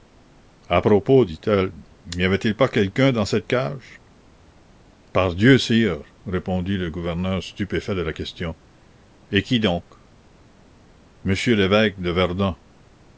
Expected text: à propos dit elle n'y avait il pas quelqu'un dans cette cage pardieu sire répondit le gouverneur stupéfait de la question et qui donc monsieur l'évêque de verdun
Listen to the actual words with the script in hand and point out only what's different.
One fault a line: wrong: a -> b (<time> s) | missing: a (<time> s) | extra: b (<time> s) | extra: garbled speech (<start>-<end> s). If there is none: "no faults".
no faults